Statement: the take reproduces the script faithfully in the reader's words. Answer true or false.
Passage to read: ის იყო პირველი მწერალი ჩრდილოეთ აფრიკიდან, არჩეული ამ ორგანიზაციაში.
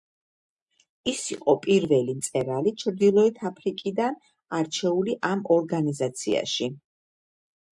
true